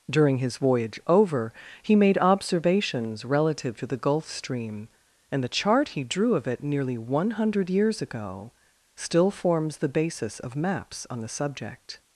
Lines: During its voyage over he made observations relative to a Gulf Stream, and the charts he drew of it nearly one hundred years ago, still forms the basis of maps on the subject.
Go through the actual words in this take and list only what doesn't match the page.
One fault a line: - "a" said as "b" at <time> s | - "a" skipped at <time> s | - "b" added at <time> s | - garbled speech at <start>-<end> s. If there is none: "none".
- "its" said as "his" at 0.4 s
- "a" said as "the" at 3.9 s
- "charts" said as "chart" at 5.5 s